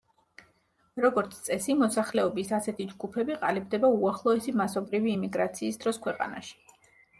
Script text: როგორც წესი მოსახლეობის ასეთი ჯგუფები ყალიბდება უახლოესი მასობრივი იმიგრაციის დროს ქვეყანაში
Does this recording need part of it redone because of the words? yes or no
no